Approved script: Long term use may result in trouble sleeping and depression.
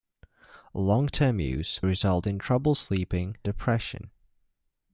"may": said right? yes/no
no